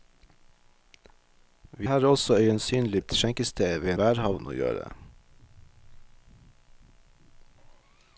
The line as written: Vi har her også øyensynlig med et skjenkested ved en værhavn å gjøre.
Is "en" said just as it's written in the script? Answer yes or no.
no